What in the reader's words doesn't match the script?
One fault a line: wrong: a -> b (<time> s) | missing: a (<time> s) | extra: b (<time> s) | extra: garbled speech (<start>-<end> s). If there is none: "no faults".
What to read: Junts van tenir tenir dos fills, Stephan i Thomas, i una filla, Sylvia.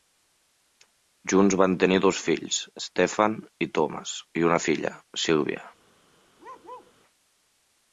missing: tenir (2.0 s)